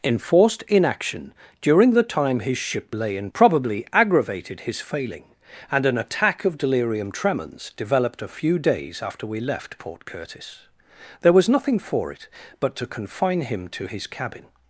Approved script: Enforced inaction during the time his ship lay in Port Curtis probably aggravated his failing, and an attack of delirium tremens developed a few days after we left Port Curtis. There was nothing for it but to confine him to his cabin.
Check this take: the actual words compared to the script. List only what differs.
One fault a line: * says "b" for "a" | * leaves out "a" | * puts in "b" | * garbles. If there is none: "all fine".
* leaves out "Port Curtis"